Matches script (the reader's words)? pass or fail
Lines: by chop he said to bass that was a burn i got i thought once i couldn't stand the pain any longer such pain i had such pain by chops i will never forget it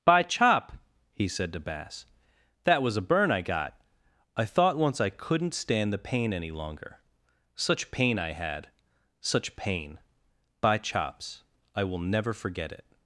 pass